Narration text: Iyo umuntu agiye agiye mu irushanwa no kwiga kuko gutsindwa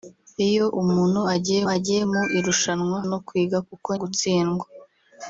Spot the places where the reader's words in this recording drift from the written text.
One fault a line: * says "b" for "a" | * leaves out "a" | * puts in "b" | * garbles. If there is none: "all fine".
all fine